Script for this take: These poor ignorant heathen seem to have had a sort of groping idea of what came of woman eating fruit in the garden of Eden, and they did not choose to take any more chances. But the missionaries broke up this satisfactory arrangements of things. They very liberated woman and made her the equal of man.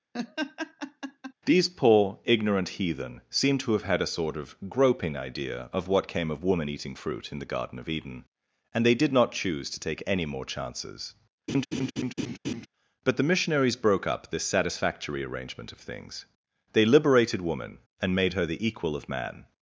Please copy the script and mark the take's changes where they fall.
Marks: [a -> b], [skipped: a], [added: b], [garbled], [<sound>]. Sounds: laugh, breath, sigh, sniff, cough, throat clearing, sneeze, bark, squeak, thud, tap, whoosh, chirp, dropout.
[laugh] These poor ignorant heathen seem to have had a sort of groping idea of what came of woman eating fruit in the garden of Eden, and they did not choose to take any more chances. [laugh] But the missionaries broke up this satisfactory [arrangements -> arrangement] of things. They [skipped: very] liberated woman and made her the equal of man.